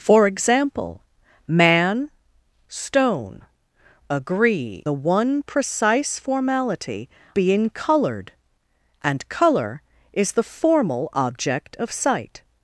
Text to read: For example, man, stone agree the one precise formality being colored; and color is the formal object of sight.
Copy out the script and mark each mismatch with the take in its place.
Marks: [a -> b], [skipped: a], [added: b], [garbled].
For example, man, stone agree the one precise formality being colored; and color is the formal object of sight.